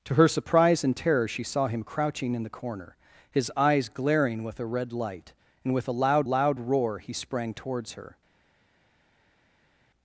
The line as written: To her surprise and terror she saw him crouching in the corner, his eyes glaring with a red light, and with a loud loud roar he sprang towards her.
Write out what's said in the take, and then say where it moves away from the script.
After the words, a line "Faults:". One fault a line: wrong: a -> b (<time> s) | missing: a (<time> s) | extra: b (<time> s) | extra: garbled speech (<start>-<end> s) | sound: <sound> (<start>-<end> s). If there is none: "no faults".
To her surprise and terror she saw him crouching in the corner, his eyes glaring with a red light, and with a loud loud roar he sprang towards her.
Faults:
no faults